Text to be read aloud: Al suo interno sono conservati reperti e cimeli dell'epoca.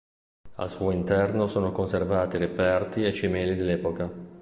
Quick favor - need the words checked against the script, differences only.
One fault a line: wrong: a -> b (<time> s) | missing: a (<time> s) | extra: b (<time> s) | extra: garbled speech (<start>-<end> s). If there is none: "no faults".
no faults